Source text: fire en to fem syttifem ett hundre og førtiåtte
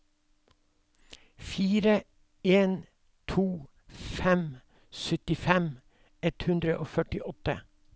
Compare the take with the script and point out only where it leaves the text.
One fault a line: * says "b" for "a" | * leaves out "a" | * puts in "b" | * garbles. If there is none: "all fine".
all fine